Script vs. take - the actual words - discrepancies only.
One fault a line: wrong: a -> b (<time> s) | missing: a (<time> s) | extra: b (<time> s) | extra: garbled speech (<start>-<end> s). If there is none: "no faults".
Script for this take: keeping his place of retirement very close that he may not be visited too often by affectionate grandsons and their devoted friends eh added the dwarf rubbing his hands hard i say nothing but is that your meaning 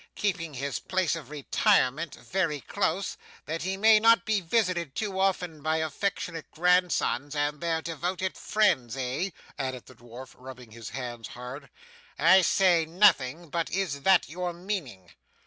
no faults